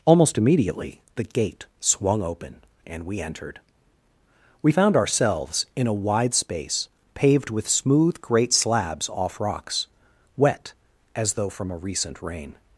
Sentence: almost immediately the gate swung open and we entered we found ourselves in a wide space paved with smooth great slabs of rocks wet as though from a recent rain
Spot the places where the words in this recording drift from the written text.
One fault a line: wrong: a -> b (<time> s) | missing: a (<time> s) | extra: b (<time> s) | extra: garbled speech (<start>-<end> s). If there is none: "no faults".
wrong: of -> off (9.1 s)